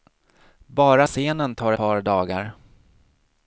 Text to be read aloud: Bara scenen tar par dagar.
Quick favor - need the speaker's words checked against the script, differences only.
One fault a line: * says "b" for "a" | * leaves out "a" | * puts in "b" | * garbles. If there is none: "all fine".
all fine